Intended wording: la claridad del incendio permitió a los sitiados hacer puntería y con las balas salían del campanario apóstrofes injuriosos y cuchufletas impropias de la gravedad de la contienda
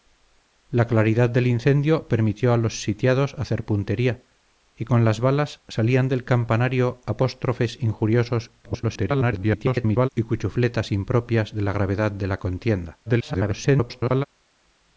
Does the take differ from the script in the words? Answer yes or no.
yes